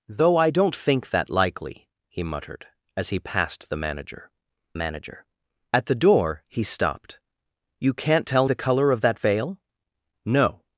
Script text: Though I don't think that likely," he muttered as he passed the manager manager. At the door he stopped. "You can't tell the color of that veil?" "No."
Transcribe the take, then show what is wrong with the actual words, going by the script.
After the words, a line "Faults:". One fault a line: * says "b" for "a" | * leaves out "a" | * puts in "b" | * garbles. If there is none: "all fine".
Though I don't think that likely," he muttered as he passed the manager manager. At the door he stopped. "You can't tell the color of that veil?" "No."
Faults:
all fine